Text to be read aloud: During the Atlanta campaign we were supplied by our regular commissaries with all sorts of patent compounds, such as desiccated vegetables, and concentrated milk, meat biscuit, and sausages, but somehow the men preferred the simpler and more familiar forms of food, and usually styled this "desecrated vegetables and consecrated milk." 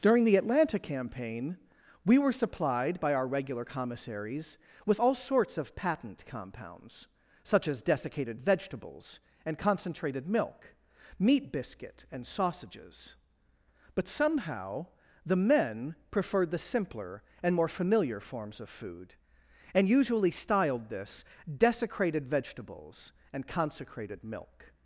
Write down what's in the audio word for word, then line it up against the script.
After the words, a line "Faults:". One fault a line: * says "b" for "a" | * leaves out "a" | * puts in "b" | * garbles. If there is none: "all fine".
During the Atlanta campaign we were supplied by our regular commissaries with all sorts of patent compounds, such as desiccated vegetables, and concentrated milk, meat biscuit, and sausages, but somehow the men preferred the simpler and more familiar forms of food, and usually styled this "desecrated vegetables and consecrated milk."
Faults:
all fine